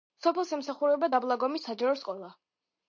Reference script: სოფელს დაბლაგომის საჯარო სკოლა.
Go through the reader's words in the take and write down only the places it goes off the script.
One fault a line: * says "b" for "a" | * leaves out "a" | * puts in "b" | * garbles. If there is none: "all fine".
* puts in "ემსახურება"